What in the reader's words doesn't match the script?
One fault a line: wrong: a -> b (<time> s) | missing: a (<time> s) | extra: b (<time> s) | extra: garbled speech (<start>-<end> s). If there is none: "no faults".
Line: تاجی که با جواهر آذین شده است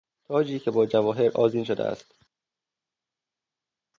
no faults